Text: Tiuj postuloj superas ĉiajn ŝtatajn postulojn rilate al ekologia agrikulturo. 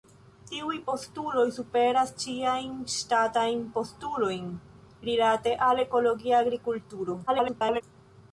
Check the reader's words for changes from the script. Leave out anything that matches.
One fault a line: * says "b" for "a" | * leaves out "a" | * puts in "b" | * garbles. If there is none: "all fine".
* garbles